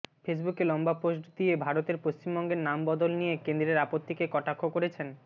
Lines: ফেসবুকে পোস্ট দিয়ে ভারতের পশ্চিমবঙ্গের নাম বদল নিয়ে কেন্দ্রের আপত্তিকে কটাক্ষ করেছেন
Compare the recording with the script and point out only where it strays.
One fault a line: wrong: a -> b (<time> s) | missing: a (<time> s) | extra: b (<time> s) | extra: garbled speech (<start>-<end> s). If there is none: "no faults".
extra: লম্বা (0.7 s)